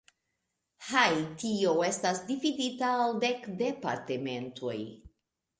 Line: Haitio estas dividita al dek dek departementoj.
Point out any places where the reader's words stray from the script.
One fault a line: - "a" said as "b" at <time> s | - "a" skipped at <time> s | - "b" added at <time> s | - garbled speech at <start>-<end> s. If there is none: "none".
- "dek" skipped at 3.4 s